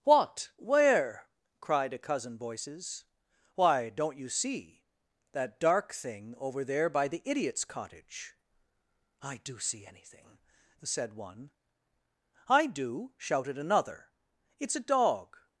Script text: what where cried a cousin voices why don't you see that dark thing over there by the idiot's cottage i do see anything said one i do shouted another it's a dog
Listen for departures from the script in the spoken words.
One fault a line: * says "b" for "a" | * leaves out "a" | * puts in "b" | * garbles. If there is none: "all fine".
all fine